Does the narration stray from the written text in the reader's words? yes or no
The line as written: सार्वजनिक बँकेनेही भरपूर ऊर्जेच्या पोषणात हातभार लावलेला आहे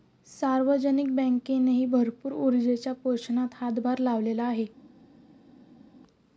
no